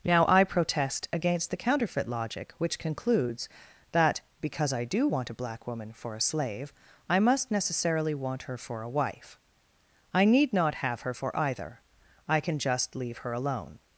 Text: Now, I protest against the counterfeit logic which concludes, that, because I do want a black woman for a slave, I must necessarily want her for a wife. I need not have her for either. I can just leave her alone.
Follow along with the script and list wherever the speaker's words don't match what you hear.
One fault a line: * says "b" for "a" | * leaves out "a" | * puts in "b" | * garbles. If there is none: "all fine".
all fine